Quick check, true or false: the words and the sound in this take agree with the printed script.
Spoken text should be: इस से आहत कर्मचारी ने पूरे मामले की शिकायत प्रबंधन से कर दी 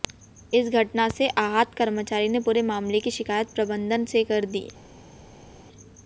false